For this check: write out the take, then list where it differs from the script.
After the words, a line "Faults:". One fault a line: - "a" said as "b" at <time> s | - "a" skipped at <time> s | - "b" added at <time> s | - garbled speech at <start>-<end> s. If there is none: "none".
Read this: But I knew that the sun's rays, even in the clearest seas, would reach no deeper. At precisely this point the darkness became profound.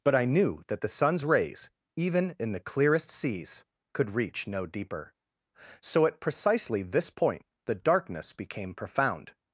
But I knew that the sun's rays, even in the clearest seas, could reach no deeper. So at precisely this point the darkness became profound.
Faults:
- "would" said as "could" at 3.9 s
- "So" added at 5.8 s